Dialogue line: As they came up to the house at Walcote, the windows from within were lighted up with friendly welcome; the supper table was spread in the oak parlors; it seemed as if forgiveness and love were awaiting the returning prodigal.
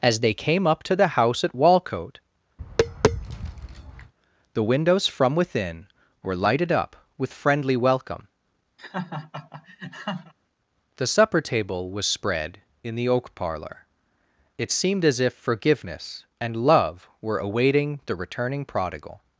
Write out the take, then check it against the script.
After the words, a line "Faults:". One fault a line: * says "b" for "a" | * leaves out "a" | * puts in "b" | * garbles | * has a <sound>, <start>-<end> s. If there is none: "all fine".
As they came up to the house at Walcote, the windows from within were lighted up with friendly welcome; the supper table was spread in the oak parlor; it seemed as if forgiveness and love were awaiting the returning prodigal.
Faults:
* has a tap, 2.6-4.1 s
* has a laugh, 8.8-10.3 s
* says "parlor" for "parlors"